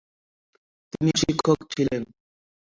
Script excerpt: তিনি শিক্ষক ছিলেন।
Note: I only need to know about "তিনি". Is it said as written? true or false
true